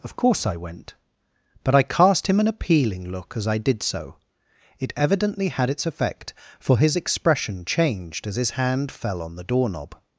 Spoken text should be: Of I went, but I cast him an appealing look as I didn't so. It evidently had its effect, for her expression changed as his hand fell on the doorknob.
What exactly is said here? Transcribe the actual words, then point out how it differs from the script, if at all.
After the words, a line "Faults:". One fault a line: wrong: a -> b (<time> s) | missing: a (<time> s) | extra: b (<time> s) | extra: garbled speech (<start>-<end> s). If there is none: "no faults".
Of course I went, but I cast him an appealing look as I did so. It evidently had its effect, for his expression changed as his hand fell on the doorknob.
Faults:
extra: course (0.1 s)
wrong: didn't -> did (3.6 s)
wrong: her -> his (6.8 s)